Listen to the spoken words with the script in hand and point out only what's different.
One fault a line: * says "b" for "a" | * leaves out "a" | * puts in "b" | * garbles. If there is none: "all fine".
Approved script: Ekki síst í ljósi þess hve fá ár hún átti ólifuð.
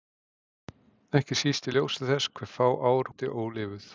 * leaves out "hún"